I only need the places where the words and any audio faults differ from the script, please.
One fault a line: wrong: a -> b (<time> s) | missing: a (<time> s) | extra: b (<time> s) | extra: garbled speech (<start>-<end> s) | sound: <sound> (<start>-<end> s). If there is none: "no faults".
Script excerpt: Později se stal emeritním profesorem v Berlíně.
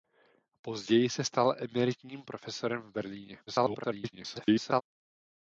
extra: garbled speech (3.5-4.8 s)